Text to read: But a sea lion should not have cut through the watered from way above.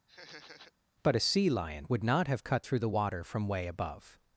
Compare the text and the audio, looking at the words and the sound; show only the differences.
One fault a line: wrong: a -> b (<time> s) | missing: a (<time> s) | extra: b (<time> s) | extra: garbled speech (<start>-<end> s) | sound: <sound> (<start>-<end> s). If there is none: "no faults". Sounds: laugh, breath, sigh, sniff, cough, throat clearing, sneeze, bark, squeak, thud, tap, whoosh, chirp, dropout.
sound: laugh (0.1-0.7 s)
wrong: should -> would (1.9 s)
wrong: watered -> water (2.9 s)